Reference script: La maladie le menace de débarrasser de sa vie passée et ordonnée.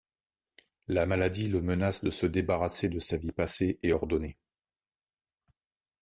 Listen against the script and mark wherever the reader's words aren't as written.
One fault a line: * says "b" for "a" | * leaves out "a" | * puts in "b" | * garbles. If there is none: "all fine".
* puts in "se"